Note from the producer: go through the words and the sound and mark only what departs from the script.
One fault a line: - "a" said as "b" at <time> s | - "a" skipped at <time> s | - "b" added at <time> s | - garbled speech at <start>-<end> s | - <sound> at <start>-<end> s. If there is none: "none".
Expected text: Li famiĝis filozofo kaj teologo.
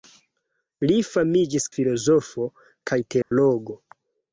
- dropout at 3.2-3.3 s